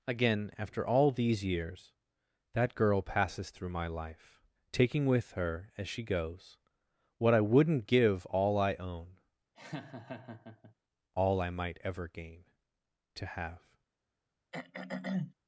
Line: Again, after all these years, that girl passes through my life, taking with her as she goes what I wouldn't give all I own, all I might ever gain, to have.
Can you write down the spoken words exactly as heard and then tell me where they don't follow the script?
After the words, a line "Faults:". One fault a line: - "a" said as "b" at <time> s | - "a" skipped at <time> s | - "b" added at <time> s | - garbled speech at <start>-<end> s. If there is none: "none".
Again, after all these years, that girl passes through my life, taking with her as she goes what I wouldn't give all I own, all I might ever gain, to have.
Faults:
none